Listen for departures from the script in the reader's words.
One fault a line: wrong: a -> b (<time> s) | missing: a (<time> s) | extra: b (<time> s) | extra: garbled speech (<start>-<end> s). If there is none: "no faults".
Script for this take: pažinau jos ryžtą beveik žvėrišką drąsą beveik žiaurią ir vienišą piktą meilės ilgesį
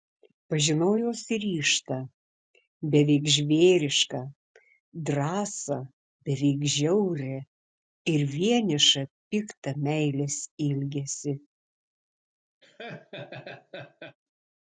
no faults